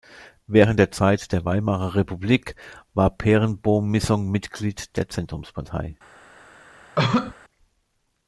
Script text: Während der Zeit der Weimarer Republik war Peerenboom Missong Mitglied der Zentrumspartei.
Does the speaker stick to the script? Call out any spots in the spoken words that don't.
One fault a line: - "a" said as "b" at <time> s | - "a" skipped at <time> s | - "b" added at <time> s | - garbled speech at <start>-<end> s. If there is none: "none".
none